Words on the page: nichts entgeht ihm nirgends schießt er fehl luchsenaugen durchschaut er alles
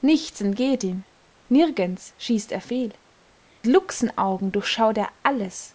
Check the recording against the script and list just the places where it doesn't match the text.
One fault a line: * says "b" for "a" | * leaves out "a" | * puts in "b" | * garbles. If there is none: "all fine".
all fine